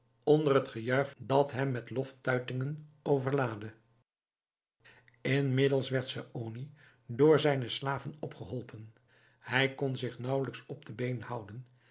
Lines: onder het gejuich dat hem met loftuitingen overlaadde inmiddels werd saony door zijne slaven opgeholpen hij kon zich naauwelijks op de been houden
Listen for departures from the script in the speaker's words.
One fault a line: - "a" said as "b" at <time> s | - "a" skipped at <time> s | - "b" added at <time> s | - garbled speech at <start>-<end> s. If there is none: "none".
none